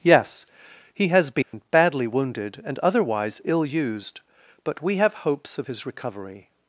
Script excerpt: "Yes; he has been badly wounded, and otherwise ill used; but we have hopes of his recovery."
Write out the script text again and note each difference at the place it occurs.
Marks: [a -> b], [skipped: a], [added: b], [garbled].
"Yes; he has been badly wounded, and otherwise ill used; but we have hopes of his recovery."